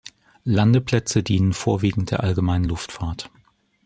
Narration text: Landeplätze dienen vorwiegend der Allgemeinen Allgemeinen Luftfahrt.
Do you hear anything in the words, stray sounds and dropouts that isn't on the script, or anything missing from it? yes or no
yes